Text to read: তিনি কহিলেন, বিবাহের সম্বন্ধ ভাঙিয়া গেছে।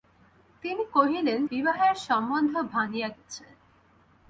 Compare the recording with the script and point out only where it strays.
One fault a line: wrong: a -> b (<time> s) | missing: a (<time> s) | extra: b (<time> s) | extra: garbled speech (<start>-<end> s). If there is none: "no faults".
no faults